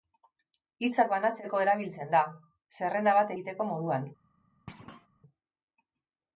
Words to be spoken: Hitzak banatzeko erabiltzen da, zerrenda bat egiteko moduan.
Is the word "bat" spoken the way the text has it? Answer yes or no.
yes